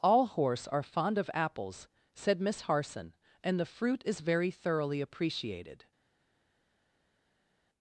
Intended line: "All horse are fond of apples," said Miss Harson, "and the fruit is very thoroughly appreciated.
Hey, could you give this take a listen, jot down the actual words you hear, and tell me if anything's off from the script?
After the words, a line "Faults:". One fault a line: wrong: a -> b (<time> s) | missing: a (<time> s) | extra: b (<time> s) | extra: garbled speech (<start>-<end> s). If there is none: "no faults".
"All horse are fond of apples," said Miss Harson, "and the fruit is very thoroughly appreciated.
Faults:
no faults